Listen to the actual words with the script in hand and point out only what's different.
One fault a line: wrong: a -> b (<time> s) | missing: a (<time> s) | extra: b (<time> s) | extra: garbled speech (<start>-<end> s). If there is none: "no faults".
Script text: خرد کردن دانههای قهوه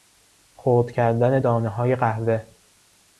no faults